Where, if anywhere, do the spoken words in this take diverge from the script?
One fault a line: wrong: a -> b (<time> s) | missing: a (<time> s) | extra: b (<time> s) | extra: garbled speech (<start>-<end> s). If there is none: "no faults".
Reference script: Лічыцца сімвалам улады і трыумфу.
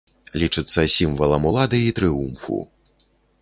no faults